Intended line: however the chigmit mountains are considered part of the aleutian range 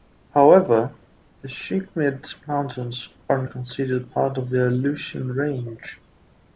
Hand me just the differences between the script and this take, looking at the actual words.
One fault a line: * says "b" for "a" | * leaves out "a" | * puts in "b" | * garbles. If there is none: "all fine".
all fine